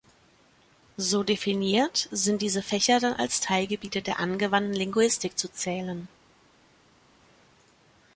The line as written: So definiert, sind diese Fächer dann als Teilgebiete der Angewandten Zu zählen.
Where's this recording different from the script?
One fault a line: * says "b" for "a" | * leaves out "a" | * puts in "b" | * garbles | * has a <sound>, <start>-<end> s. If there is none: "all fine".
* puts in "Linguistik"